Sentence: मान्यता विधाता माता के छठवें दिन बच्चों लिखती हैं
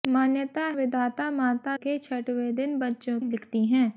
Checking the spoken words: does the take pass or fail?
pass